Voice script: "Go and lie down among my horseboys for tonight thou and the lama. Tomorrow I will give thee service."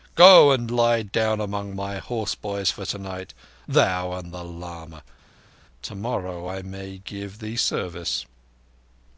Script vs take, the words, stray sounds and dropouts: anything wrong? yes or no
yes